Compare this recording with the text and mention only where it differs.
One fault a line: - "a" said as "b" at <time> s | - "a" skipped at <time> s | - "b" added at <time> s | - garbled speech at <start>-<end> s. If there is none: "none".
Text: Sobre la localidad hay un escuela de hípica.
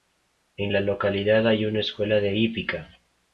- "Sobre" said as "En" at 0.6 s
- "un" said as "una" at 1.6 s